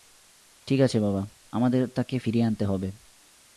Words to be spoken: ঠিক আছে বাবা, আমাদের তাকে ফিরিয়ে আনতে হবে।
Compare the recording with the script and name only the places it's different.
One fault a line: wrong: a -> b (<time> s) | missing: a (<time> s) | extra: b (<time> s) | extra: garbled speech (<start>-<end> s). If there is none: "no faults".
no faults